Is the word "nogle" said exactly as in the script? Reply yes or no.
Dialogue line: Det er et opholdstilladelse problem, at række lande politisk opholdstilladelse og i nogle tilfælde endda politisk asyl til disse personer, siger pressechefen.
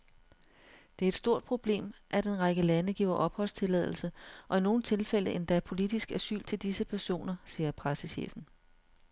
yes